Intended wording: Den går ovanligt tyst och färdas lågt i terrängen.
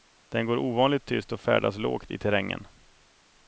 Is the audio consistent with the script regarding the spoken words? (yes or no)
yes